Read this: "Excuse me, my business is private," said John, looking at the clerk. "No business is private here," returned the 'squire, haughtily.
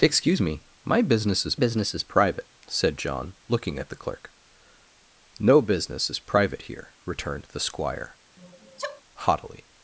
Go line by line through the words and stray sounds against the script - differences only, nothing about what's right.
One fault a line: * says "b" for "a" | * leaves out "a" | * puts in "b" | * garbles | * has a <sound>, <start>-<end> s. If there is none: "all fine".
* puts in "business is"
* has a sneeze, 8.4-9.0 s